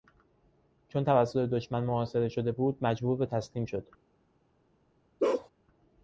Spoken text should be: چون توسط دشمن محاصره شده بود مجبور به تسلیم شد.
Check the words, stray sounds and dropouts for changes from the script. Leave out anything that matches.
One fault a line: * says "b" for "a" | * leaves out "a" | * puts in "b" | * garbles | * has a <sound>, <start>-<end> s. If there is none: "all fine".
* has a bark, 5.2-5.5 s